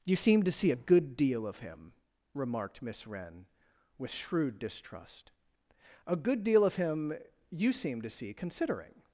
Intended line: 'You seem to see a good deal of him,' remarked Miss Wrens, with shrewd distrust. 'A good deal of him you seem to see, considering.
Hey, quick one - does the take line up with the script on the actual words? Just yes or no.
no